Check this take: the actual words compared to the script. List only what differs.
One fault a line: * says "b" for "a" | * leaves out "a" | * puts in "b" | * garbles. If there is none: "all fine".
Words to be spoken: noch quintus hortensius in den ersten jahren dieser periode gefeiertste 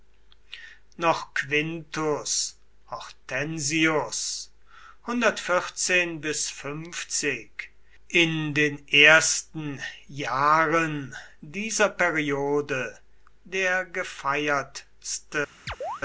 * puts in "der"